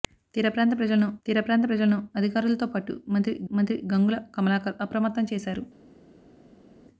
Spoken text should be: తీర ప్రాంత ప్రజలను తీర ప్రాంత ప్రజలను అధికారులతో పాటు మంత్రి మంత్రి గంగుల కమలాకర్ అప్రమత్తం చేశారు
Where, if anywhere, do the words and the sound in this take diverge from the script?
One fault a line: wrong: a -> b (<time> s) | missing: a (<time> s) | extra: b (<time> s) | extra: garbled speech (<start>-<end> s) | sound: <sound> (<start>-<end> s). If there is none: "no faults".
no faults